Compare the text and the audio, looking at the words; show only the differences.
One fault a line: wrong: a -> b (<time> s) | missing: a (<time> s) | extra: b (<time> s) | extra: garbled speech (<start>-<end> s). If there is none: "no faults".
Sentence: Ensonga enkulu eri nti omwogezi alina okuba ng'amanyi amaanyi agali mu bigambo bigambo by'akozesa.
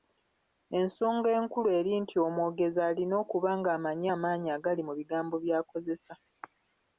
missing: bigambo (5.3 s)